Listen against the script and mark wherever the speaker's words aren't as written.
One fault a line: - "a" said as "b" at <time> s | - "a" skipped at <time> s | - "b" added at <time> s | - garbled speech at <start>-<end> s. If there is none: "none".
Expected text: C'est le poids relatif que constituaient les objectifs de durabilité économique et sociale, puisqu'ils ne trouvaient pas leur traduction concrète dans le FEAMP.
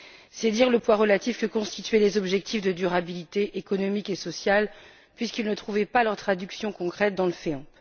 - "dire" added at 0.5 s